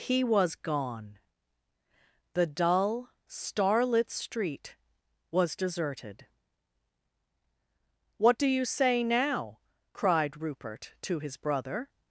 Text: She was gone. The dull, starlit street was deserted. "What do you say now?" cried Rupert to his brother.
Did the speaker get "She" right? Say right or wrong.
wrong